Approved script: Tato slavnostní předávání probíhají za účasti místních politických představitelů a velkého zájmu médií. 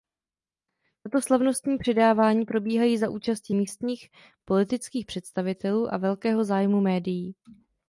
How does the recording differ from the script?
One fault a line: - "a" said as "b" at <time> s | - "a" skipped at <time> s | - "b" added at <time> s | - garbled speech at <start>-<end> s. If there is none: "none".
none